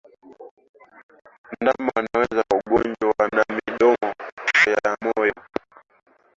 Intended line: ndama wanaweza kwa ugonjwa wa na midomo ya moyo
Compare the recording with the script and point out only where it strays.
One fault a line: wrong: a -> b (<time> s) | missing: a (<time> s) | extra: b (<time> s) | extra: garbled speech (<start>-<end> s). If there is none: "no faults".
no faults